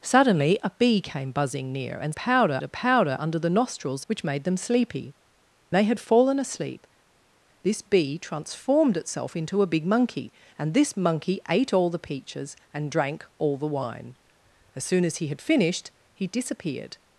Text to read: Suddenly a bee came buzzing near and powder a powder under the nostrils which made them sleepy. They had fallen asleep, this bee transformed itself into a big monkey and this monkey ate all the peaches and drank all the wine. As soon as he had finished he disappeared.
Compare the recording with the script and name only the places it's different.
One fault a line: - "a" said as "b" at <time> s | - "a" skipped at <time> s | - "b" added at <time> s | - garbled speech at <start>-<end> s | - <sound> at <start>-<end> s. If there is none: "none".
none